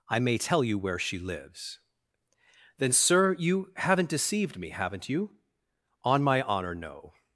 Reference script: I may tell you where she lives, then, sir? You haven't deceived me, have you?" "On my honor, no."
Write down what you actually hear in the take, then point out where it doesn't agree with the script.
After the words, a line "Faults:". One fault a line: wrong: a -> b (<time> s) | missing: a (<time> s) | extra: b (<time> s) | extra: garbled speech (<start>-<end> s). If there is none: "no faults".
I may tell you where she lives, then, sir? You haven't deceived me, haven't you?" "On my honor, no."
Faults:
wrong: have -> haven't (4.7 s)